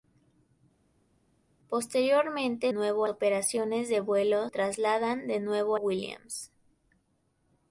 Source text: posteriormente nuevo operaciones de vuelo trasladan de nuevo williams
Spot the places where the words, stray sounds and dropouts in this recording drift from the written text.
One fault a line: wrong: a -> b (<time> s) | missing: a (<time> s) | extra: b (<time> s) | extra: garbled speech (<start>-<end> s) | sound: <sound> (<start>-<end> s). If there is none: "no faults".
no faults